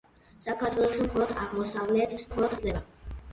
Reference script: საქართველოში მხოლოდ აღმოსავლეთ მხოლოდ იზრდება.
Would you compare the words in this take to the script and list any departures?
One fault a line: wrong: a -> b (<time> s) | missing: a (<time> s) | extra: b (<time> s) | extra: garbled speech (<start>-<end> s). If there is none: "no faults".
no faults